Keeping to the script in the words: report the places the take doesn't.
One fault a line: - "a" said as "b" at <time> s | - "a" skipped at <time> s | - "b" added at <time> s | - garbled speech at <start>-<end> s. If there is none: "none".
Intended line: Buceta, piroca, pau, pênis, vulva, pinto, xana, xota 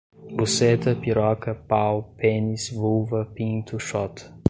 - "xana" skipped at 3.8 s